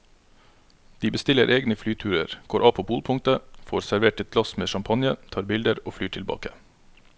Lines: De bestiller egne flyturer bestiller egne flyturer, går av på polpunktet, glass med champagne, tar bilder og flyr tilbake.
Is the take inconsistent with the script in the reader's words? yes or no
yes